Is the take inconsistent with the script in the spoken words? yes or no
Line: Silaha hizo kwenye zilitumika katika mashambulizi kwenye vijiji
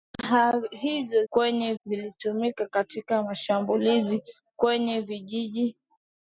no